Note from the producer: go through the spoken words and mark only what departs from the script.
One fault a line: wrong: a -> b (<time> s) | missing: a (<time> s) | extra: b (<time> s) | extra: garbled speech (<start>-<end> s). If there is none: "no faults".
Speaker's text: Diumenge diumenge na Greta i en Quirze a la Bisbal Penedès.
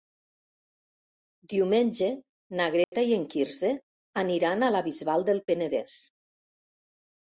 missing: diumenge (2.1 s)
extra: aniran (4.3 s)
extra: del (5.3 s)